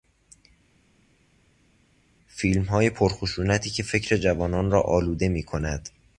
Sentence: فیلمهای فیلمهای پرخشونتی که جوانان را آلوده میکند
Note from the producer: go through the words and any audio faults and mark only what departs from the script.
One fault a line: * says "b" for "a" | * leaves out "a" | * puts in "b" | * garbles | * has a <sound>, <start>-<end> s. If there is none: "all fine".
* leaves out "فیلمهای"
* puts in "فکر"